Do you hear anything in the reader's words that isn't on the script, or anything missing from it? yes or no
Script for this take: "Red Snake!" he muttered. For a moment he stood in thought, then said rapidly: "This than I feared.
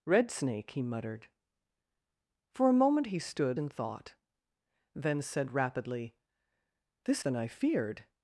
no